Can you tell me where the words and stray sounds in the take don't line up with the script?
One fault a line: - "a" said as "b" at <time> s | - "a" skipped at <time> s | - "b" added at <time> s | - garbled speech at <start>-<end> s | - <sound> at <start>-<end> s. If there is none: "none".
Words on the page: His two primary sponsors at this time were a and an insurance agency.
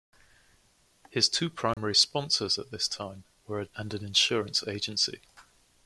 - dropout at 1.7-1.8 s